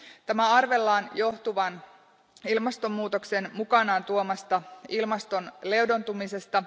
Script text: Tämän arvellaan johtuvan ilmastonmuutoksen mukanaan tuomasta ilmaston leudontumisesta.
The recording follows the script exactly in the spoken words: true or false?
true